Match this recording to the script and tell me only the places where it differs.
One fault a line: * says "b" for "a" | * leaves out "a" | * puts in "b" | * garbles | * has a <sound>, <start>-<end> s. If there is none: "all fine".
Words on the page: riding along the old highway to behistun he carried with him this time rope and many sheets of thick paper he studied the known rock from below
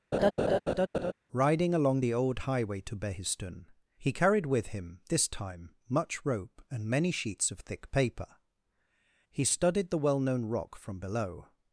* has a laugh, 0.1-1.1 s
* puts in "much"
* puts in "well"